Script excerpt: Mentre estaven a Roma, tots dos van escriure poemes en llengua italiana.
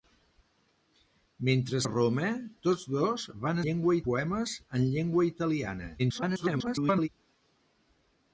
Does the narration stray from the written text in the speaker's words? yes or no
yes